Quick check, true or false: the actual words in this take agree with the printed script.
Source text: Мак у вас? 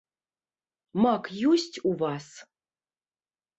false